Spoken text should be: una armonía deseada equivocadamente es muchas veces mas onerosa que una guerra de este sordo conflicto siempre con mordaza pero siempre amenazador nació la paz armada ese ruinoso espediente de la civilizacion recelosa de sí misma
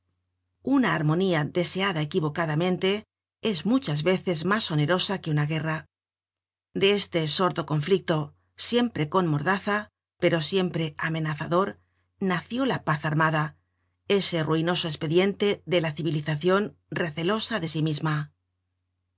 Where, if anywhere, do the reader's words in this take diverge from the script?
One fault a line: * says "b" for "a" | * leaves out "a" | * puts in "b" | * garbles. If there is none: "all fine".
all fine